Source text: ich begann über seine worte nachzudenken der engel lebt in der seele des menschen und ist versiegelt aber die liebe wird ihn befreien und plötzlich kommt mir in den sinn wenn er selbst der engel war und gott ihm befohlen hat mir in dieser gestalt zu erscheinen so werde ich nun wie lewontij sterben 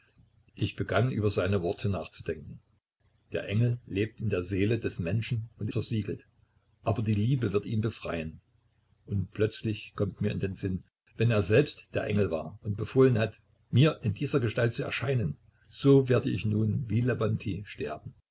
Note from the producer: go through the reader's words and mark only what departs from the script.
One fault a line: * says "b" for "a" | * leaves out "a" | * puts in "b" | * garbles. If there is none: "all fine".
* leaves out "ist"
* leaves out "gott ihm"